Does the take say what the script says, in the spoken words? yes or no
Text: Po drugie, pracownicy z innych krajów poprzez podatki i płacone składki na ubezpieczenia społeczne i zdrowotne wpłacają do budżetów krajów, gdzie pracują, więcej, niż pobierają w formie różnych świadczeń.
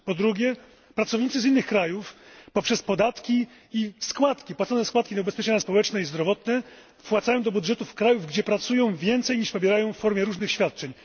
yes